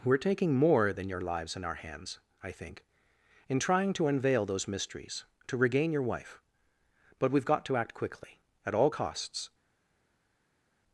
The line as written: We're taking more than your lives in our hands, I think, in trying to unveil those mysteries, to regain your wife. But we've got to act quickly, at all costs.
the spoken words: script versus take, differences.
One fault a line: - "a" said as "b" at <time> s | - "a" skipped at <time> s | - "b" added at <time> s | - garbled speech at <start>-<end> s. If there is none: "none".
none